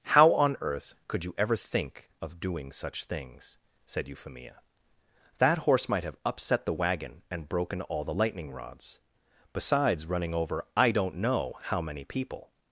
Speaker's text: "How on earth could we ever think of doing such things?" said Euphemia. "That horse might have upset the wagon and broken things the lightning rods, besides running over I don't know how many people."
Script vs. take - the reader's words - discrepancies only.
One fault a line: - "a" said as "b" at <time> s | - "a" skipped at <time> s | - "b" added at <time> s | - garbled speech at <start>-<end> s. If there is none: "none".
- "we" said as "you" at 1.2 s
- "things" said as "all" at 7.8 s